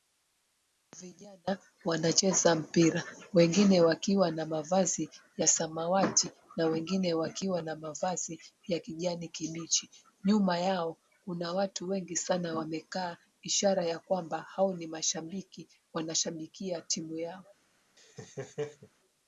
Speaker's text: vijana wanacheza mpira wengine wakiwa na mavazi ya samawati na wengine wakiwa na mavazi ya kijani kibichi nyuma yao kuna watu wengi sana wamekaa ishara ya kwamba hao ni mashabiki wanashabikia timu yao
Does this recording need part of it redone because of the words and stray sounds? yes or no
yes